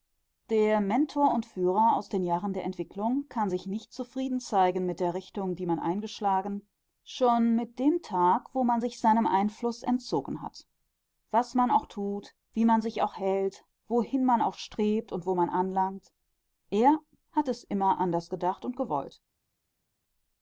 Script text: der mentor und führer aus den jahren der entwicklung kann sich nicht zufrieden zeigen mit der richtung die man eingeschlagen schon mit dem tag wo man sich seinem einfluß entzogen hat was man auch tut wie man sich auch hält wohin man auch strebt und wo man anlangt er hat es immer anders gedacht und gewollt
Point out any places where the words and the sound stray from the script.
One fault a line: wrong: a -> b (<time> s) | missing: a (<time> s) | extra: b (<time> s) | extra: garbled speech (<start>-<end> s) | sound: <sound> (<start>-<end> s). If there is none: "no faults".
no faults